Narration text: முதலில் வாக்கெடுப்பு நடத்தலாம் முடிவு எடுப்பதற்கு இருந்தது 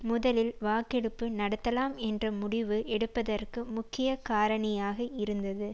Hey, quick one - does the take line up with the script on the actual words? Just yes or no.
no